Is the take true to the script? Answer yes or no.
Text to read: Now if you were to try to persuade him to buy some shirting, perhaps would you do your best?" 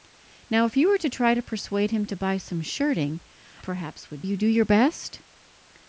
yes